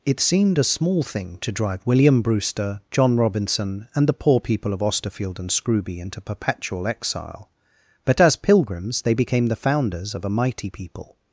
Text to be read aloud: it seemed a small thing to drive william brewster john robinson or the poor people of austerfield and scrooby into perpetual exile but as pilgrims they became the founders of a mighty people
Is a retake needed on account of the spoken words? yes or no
yes